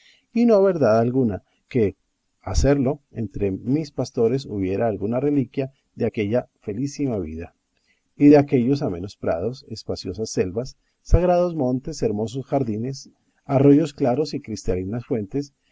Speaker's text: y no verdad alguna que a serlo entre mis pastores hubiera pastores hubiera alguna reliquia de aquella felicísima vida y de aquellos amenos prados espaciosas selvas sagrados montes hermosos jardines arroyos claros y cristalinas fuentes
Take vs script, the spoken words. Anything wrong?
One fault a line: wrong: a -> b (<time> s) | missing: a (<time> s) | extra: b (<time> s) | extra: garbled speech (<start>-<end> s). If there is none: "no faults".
missing: pastores hubiera (4.9 s)